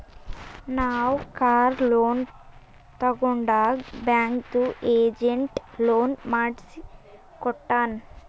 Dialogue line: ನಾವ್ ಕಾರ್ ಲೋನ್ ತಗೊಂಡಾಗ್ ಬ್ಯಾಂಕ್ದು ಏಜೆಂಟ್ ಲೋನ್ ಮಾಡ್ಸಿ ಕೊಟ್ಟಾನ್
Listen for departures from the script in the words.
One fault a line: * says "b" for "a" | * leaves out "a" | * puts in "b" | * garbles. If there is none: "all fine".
all fine